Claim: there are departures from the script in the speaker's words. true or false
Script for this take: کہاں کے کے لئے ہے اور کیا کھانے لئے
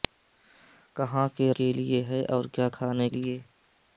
false